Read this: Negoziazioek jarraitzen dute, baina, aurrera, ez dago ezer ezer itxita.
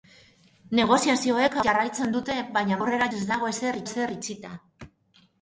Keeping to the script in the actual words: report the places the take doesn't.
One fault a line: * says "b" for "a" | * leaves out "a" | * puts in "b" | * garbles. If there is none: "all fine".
all fine